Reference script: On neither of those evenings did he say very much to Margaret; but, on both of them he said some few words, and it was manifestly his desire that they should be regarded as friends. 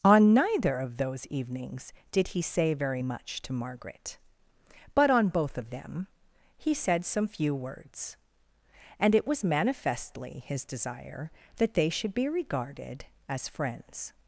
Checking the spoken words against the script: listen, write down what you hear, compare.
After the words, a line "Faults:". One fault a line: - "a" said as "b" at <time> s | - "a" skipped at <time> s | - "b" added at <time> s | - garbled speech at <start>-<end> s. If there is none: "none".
On neither of those evenings did he say very much to Margaret; but, on both of them he said some few words, and it was manifestly his desire that they should be regarded as friends.
Faults:
none